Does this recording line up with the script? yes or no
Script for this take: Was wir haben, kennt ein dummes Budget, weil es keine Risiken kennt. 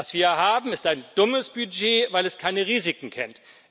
no